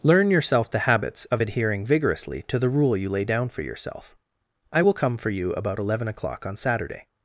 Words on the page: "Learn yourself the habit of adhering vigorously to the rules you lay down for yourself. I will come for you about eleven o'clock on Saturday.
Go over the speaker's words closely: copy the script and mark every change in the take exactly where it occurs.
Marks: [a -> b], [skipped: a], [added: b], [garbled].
"Learn yourself the [habit -> habits] of adhering vigorously to the [rules -> rule] you lay down for yourself. I will come for you about eleven o'clock on Saturday.